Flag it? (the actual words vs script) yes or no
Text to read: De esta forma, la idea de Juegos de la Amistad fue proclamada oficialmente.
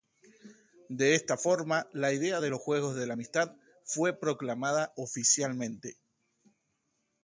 yes